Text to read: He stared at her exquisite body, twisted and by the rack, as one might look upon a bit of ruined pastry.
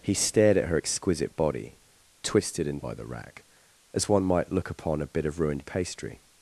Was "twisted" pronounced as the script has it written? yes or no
yes